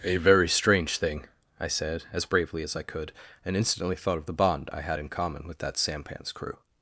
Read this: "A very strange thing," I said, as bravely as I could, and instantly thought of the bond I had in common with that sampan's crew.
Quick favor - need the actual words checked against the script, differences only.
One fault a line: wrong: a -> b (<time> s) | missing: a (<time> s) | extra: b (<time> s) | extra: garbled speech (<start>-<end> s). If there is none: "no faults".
no faults